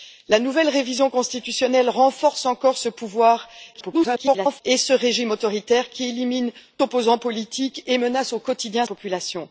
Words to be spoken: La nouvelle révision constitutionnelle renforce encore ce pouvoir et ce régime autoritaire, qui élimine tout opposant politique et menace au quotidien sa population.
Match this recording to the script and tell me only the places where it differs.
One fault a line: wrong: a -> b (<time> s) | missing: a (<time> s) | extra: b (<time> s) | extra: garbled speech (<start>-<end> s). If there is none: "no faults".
extra: garbled speech (3.7-4.6 s)
missing: tout (6.5 s)
missing: sa (8.8 s)